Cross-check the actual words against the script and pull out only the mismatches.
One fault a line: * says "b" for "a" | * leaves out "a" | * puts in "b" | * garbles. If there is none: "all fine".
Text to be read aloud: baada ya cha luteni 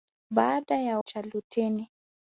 all fine